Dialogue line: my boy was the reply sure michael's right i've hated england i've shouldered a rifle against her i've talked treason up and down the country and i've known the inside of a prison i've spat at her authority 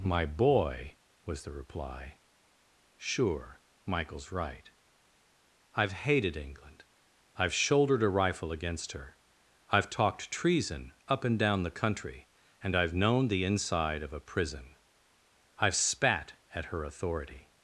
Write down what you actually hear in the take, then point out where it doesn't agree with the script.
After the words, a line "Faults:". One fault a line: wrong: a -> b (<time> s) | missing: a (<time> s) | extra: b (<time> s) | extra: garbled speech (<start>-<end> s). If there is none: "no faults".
my boy was the reply sure michael's right i've hated england i've shouldered a rifle against her i've talked treason up and down the country and i've known the inside of a prison i've spat at her authority
Faults:
no faults